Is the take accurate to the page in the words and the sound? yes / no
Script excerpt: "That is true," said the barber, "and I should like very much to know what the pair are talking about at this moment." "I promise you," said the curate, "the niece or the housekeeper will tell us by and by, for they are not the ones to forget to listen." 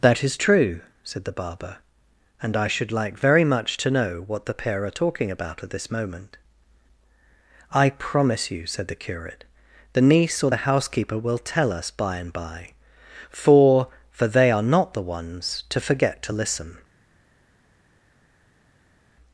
no